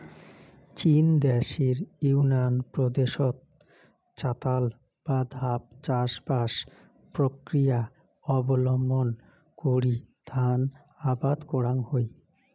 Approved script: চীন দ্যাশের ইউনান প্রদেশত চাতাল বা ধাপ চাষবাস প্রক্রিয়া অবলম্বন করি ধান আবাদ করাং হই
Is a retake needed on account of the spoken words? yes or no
no